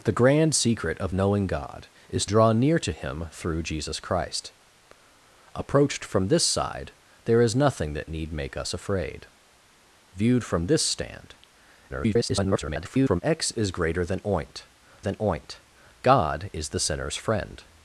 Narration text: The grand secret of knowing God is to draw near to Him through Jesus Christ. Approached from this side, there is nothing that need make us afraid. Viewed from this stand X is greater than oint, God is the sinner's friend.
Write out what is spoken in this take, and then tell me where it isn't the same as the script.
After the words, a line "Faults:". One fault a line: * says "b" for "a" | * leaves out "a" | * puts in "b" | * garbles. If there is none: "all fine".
The grand secret of knowing God is draw near to Him through Jesus Christ. Approached from this side, there is nothing that need make us afraid. Viewed from this stand [garbled] X is greater than oint than oint, God is the sinner's friend.
Faults:
* leaves out "to"
* garbles
* puts in "than oint"